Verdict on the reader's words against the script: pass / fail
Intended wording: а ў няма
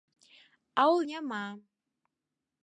pass